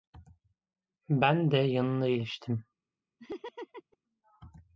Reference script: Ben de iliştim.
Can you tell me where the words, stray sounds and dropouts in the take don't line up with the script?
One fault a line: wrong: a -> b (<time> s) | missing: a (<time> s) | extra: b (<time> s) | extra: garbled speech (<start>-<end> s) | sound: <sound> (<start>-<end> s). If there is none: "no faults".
extra: yanına (1.6 s)
sound: laugh (3.2-4.0 s)